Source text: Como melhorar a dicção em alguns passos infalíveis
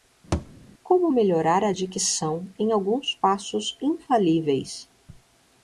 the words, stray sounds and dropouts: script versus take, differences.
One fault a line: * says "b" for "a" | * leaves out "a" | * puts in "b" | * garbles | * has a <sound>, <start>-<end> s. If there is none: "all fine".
* has a thud, 0.3-0.5 s